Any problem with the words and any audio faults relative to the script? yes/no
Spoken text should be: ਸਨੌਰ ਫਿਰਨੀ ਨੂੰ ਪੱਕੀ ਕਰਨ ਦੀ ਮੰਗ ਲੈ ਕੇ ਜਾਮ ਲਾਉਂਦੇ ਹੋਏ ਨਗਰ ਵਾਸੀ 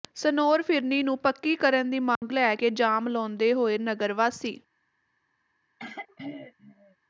yes